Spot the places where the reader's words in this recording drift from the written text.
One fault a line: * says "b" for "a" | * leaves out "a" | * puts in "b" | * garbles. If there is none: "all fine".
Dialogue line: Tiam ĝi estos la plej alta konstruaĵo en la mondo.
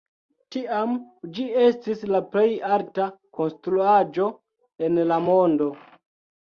* says "estis" for "estos"